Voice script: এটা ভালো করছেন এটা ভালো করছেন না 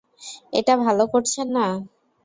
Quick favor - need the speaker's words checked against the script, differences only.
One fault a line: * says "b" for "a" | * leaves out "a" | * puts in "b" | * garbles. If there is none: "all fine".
* leaves out "এটা ভালো করছেন"